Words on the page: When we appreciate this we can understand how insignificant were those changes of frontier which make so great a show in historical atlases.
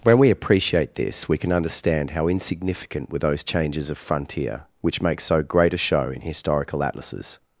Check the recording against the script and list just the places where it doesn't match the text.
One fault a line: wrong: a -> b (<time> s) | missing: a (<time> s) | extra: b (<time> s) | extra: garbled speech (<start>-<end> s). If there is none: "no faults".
no faults